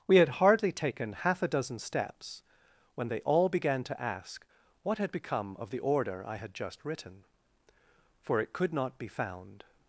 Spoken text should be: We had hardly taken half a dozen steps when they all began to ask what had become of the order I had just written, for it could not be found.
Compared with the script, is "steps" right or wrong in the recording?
right